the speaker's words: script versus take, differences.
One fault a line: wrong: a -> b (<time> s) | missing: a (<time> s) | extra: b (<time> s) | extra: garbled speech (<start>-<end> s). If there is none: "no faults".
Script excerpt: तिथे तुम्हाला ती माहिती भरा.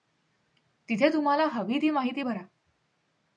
extra: हवी (1.4 s)